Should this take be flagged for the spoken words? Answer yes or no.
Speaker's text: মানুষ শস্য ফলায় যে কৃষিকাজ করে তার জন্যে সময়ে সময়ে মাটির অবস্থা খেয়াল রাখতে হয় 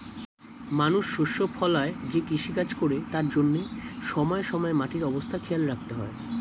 no